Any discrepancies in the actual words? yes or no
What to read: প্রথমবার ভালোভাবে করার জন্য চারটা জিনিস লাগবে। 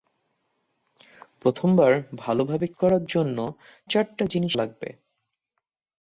no